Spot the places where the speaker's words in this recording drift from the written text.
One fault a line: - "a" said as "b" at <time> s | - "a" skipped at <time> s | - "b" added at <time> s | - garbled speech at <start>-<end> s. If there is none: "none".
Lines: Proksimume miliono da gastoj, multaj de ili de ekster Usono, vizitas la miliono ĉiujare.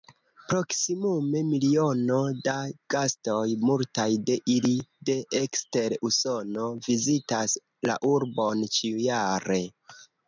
- "miliono" said as "urbon" at 8.2 s